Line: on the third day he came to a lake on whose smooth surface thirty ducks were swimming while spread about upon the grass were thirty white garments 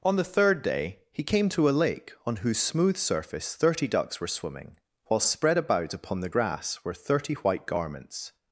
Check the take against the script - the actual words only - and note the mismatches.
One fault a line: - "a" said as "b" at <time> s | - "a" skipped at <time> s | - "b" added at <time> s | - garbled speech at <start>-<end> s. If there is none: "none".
none